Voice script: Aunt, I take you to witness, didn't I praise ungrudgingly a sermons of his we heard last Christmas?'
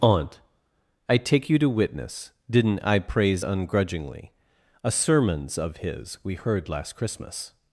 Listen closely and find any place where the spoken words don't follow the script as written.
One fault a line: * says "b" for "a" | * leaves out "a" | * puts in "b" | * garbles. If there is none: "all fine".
all fine